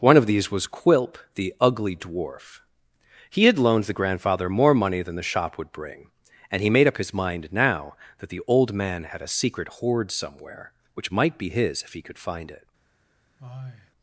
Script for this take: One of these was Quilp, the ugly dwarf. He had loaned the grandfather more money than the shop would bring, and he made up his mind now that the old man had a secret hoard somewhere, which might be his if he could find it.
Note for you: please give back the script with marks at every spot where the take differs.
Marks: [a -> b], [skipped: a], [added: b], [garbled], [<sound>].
One of these was Quilp, the ugly dwarf. He had loaned the grandfather more money than the shop would bring, and he made up his mind now that the old man had a secret hoard somewhere, which might be his if he could find it. [sigh]